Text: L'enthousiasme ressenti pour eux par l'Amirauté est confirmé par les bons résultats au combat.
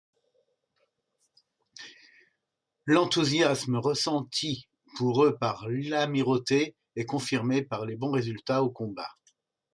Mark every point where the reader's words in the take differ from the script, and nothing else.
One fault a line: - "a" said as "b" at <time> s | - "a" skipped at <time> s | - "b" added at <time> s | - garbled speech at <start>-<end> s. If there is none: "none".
none